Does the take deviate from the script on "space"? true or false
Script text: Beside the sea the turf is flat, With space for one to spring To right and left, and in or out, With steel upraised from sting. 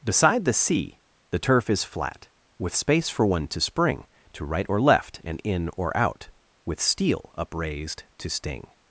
false